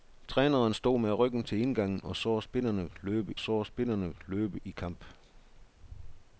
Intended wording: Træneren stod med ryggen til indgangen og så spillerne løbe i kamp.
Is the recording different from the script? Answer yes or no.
yes